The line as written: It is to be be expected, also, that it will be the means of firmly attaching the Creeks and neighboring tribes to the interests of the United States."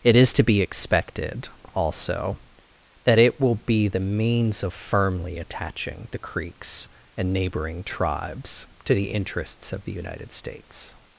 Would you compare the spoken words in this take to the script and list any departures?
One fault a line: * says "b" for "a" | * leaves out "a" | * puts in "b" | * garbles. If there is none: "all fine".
* leaves out "be"